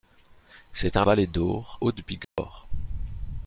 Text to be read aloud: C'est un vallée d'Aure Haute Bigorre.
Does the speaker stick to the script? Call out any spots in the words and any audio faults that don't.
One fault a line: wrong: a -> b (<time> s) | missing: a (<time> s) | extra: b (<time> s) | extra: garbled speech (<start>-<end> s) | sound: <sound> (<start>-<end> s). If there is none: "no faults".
sound: dropout (2.2-2.4 s)